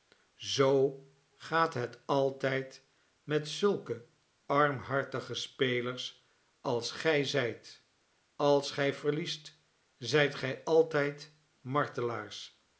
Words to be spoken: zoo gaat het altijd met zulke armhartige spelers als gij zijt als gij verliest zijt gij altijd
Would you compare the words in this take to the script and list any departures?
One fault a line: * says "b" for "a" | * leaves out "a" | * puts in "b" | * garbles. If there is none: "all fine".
all fine